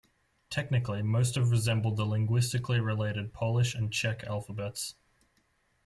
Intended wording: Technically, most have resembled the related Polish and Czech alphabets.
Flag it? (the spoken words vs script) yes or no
yes